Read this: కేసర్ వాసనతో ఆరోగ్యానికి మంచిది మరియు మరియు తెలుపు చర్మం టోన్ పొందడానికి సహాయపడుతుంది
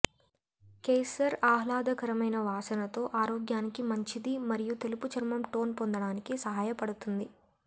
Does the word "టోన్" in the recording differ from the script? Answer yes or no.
no